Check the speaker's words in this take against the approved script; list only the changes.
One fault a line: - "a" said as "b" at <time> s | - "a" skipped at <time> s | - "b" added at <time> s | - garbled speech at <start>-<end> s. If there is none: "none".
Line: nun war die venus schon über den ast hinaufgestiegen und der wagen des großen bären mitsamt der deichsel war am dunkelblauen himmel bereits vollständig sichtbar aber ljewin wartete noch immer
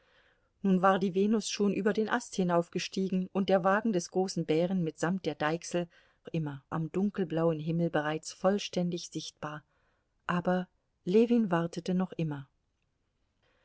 - "war" said as "immer" at 6.3 s